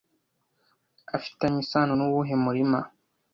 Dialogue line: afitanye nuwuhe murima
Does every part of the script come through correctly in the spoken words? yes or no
no